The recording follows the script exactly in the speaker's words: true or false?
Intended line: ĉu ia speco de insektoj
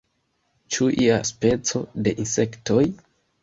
true